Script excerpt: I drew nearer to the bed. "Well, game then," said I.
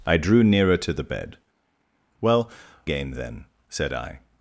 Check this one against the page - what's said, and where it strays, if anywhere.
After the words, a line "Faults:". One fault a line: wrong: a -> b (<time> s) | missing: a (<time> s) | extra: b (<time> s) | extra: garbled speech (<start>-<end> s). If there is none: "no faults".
I drew nearer to the bed. "Well, game then," said I.
Faults:
no faults